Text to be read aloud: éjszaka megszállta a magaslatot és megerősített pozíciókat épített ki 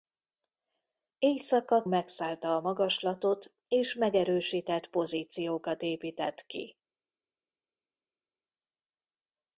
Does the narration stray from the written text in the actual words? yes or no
no